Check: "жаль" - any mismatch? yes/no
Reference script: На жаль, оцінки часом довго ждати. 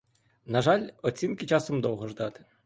no